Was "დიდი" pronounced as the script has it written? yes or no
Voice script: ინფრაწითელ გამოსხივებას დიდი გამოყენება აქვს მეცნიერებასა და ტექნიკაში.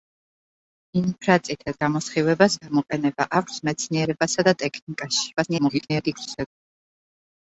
no